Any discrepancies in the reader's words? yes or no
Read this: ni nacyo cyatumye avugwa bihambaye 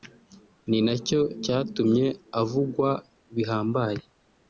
no